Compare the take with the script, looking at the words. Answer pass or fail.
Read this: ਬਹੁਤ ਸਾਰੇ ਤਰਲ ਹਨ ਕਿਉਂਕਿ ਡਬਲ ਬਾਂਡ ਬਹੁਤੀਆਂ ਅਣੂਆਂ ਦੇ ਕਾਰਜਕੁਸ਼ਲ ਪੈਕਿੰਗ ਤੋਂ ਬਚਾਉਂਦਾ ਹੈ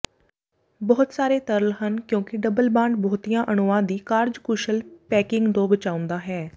fail